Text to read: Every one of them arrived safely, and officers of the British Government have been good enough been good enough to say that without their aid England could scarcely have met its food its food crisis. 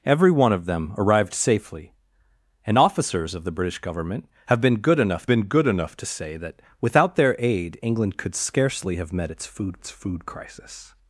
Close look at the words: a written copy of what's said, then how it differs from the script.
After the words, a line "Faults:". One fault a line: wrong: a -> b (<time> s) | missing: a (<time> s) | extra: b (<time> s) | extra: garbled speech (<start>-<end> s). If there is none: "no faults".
Every one of them arrived safely, and officers of the British Government have been good enough been good enough to say that without their aid England could scarcely have met its food its food crisis.
Faults:
no faults